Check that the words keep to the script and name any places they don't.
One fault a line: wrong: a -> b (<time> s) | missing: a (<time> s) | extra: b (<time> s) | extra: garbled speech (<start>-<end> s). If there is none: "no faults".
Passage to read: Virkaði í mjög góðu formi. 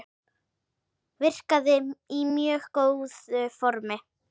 no faults